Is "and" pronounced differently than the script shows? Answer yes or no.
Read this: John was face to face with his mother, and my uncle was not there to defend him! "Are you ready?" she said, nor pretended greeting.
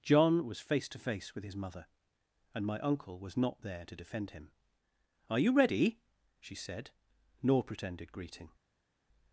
no